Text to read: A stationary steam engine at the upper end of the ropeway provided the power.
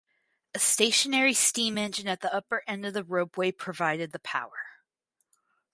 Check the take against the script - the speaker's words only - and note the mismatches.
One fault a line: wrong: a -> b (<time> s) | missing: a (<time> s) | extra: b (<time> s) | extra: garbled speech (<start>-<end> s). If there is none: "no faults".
no faults